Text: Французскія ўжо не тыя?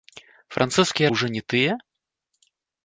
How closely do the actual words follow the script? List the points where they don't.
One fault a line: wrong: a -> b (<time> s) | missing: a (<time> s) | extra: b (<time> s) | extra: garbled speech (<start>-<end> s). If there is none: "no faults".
no faults